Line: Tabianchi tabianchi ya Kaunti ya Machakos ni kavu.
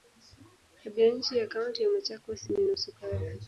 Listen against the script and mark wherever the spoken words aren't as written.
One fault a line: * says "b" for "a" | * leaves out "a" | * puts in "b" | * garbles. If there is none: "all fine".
* leaves out "tabianchi"
* puts in "nusu"